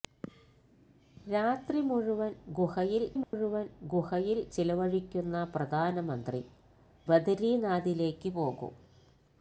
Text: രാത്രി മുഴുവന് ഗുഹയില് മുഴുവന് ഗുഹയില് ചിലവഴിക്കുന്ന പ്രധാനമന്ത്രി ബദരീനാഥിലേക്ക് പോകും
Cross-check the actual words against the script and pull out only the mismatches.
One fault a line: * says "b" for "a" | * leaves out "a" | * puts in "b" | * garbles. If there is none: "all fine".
all fine